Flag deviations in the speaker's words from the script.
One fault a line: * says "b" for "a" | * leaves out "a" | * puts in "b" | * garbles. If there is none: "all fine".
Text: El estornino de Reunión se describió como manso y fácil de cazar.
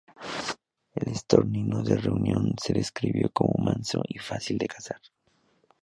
all fine